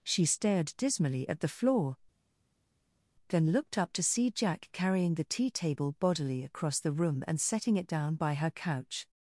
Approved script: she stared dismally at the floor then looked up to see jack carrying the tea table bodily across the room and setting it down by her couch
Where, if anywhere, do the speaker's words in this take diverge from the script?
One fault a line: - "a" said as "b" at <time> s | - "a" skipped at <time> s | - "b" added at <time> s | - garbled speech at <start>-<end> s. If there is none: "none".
none